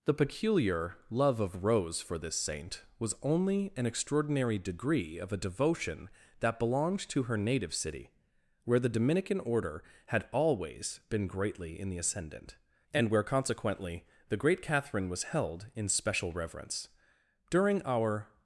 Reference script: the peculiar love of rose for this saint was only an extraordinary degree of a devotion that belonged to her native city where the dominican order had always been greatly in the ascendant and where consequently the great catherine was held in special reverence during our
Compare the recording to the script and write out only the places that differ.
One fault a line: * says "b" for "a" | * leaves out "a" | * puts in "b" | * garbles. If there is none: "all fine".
all fine